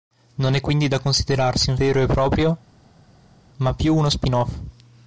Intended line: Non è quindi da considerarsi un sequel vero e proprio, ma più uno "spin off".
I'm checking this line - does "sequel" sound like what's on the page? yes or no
no